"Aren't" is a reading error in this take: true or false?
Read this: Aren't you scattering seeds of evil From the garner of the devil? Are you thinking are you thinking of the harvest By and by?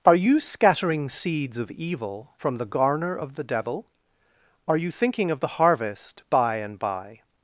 true